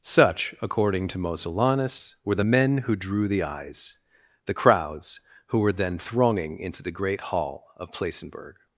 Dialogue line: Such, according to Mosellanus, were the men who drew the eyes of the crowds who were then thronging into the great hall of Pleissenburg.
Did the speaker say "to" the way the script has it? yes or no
yes